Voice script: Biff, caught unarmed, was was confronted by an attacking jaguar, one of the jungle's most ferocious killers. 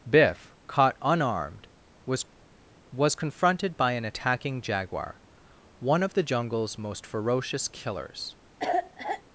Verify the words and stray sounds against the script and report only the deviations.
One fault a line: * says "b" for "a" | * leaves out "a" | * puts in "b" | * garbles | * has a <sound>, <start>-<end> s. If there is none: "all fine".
* has a cough, 8.6-9.2 s